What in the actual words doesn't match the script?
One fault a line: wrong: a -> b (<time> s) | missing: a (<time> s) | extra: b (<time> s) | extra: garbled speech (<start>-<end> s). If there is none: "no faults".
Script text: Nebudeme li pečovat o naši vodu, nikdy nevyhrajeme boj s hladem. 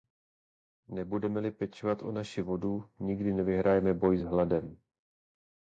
no faults